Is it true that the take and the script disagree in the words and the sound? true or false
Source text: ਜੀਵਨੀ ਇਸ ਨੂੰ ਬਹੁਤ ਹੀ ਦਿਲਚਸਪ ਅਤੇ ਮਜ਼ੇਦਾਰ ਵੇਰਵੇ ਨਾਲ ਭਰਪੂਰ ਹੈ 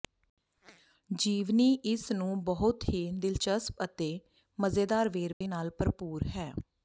true